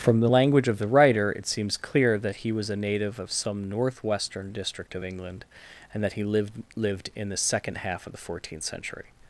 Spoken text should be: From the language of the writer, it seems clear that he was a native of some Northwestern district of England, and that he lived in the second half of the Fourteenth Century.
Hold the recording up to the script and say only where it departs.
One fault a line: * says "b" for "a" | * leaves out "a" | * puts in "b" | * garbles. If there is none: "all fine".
* puts in "lived"